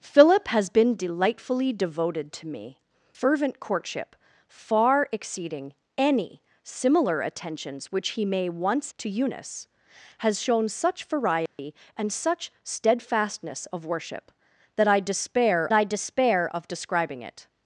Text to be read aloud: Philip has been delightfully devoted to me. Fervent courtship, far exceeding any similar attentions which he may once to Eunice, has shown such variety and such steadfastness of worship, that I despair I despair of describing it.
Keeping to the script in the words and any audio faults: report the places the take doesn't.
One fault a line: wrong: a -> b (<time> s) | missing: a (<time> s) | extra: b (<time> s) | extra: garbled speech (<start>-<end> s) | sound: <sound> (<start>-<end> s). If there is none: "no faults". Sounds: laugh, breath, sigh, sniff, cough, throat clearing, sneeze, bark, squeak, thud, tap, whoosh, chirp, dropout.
sound: dropout (11.5-11.6 s)